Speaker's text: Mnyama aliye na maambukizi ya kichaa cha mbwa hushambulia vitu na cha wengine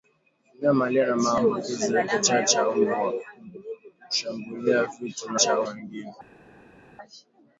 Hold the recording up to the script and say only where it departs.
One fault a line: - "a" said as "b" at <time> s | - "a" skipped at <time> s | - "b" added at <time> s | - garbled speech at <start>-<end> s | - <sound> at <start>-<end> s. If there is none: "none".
none